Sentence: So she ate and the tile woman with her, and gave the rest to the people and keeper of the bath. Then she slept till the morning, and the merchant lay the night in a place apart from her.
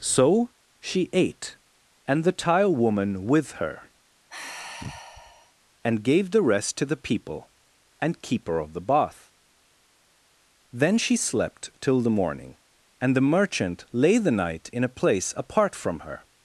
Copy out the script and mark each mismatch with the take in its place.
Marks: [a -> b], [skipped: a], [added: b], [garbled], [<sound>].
So she ate and the tile woman with her, [sigh] and gave the rest to the people and keeper of the bath. Then she slept till the morning, and the merchant lay the night in a place apart from her.